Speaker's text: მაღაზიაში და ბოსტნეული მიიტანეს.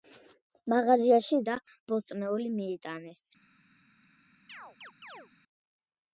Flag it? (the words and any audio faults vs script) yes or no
yes